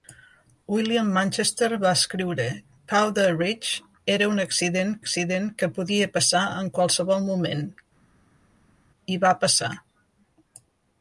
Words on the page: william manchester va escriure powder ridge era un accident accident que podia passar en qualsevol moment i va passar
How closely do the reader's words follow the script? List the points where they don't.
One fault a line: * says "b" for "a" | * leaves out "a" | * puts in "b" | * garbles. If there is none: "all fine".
all fine